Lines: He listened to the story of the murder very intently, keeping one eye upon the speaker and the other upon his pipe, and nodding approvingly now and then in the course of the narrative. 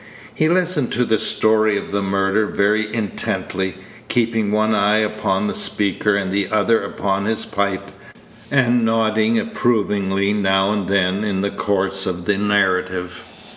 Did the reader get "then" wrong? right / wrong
right